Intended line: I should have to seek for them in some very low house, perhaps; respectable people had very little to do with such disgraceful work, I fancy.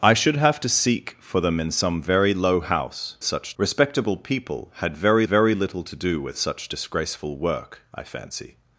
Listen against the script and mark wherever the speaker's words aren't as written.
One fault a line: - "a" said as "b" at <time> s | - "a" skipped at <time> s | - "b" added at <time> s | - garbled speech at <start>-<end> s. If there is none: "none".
- "perhaps" said as "such" at 3.2 s
- "very" added at 5.2 s